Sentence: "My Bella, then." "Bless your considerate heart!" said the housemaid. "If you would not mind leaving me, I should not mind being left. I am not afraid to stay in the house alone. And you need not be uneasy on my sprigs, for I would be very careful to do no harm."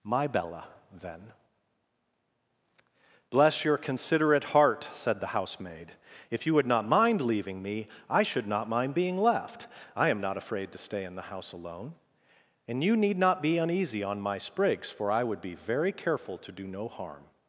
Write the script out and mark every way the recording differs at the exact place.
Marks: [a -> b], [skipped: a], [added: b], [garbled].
"My Bella, then." "Bless your considerate heart!" said the housemaid. "If you would not mind leaving me, I should not mind being left. I am not afraid to stay in the house alone. And you need not be uneasy on my sprigs, for I would be very careful to do no harm."